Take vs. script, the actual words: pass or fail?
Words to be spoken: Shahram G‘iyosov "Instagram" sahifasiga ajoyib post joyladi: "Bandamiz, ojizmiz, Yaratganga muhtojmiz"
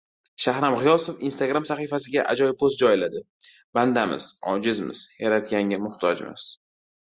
pass